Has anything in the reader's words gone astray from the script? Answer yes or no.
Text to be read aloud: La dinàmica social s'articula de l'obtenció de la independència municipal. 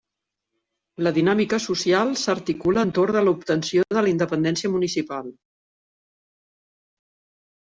yes